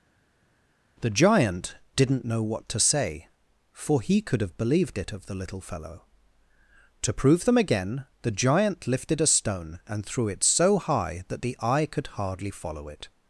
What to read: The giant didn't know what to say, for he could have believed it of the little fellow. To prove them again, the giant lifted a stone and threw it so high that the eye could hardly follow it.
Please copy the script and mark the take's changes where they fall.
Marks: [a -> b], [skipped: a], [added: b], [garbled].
The giant didn't know what to say, for he could have believed it of the little fellow. To prove them again, the giant lifted a stone and threw it so high that the eye could hardly follow it.